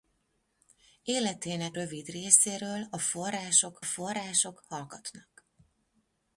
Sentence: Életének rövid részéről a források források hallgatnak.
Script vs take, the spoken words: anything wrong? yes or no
no